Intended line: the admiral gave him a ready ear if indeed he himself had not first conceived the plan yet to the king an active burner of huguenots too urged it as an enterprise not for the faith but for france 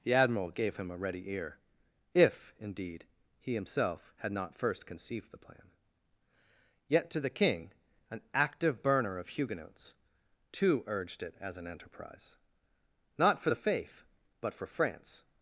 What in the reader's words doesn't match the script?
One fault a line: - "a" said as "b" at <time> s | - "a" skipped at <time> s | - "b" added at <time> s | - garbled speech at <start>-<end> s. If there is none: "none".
none